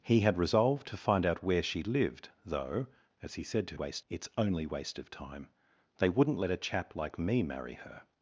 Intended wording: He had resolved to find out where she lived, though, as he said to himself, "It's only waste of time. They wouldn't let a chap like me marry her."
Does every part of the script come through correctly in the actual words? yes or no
no